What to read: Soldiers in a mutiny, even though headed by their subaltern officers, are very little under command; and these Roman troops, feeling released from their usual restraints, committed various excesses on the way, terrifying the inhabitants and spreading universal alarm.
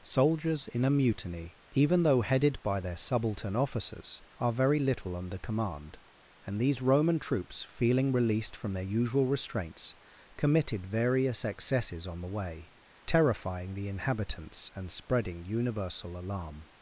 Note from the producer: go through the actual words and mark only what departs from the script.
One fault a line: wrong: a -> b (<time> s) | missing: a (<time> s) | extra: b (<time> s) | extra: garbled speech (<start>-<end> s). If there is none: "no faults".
no faults